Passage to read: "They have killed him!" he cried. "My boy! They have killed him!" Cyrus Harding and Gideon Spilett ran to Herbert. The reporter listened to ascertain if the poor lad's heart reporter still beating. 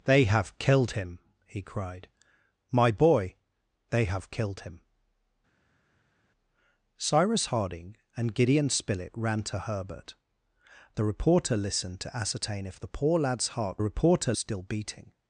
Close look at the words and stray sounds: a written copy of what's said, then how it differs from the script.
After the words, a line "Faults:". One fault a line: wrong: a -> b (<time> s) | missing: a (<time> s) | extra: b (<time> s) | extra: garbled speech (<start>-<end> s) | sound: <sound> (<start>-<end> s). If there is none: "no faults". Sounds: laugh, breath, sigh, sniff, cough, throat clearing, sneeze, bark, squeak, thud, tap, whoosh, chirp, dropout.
"They have killed him!" he cried. "My boy! They have killed him!" Cyrus Harding and Gideon Spilett ran to Herbert. The reporter listened to ascertain if the poor lad's heart reporter still beating.
Faults:
no faults